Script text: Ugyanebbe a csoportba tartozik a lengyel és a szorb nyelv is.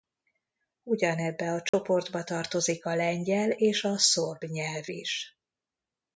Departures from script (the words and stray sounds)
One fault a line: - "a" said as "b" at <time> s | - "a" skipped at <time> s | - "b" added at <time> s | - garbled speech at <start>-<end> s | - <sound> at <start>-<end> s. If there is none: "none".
- dropout at 1.7-1.7 s